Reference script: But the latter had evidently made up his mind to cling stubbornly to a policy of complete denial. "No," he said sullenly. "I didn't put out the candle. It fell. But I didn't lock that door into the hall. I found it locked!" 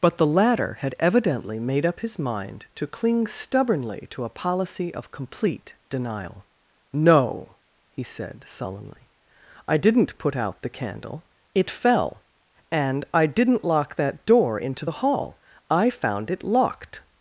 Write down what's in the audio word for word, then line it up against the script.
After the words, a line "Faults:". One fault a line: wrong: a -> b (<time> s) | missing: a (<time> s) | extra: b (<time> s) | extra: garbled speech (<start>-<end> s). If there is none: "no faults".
But the latter had evidently made up his mind to cling stubbornly to a policy of complete denial. "No," he said sullenly. "I didn't put out the candle. It fell. And I didn't lock that door into the hall. I found it locked!"
Faults:
wrong: But -> And (12.7 s)